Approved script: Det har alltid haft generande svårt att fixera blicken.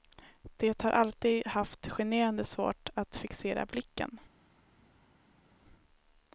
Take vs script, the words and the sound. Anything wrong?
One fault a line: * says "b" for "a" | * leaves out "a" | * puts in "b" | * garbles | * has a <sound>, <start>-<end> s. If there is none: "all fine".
all fine